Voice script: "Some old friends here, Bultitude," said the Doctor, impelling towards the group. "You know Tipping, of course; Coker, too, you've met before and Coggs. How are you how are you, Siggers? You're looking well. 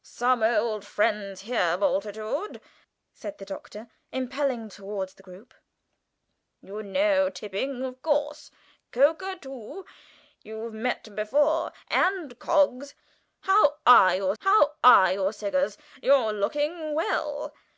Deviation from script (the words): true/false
false